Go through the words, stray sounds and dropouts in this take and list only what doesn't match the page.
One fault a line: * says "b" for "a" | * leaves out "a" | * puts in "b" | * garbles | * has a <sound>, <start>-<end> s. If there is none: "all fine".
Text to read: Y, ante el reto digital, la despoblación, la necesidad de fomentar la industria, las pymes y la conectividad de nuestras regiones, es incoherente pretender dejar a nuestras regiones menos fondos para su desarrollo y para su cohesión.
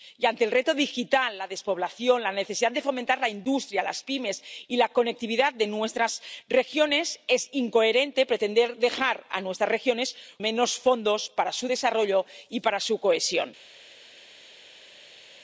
all fine